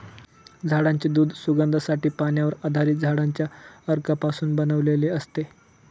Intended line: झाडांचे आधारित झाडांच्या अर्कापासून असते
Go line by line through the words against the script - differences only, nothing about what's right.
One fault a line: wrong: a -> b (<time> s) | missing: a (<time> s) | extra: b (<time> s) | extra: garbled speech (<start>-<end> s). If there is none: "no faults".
extra: दूध सुगंधासाठी पाण्यावर (1.1 s)
extra: बनवलेले (4.5 s)